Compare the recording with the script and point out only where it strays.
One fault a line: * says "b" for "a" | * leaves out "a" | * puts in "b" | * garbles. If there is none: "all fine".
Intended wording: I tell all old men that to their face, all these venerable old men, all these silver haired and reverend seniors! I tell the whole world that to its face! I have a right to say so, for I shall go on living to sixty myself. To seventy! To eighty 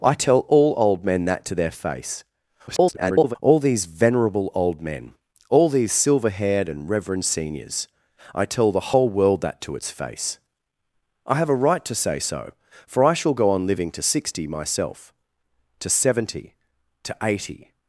* garbles